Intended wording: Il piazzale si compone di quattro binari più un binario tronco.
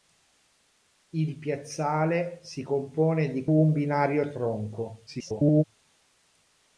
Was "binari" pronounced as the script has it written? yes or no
no